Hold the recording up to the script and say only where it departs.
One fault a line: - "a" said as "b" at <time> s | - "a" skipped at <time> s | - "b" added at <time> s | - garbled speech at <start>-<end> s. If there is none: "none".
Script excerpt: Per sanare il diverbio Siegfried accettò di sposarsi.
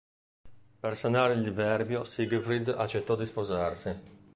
none